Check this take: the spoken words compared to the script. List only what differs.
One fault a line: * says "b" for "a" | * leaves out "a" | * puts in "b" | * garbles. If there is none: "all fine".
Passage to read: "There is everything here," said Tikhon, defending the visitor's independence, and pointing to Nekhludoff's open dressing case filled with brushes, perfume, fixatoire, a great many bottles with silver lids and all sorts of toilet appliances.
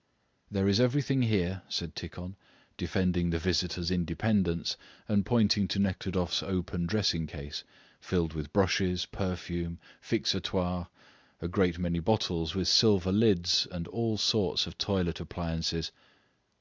all fine